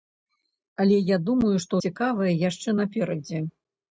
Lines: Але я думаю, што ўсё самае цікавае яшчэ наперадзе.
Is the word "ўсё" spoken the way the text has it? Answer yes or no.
no